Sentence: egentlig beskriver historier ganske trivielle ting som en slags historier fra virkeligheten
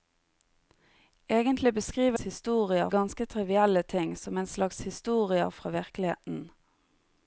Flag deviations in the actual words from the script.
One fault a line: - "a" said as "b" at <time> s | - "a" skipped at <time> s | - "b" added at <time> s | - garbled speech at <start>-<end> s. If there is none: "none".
none